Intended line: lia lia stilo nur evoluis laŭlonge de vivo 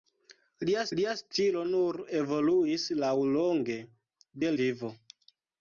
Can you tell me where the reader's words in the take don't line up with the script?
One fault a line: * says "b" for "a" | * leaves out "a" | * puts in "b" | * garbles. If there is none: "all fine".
all fine